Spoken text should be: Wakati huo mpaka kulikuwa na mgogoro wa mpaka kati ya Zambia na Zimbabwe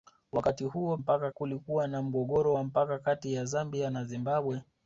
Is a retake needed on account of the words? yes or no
no